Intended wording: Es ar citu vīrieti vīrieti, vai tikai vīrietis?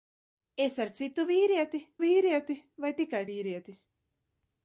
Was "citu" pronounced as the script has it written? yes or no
yes